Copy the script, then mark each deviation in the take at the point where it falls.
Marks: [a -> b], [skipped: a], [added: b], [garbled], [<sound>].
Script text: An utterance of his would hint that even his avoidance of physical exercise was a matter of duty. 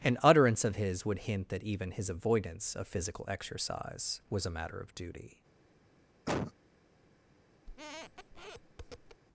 An utterance of his would hint that even his avoidance of physical exercise was a matter of duty. [cough] [squeak]